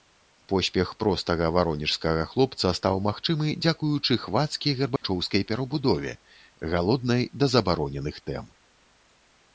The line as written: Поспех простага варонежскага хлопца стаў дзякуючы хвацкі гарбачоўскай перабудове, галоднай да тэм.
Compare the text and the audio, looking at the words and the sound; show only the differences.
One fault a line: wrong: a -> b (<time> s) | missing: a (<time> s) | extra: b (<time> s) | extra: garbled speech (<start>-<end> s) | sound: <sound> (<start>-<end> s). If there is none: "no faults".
extra: магчымы (3.1 s)
sound: dropout (5.0-5.0 s)
extra: забароненых (7.6 s)